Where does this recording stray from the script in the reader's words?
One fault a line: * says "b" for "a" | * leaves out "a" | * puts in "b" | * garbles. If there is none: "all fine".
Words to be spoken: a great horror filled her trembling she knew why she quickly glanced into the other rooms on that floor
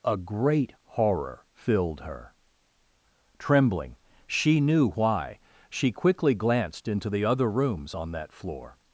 all fine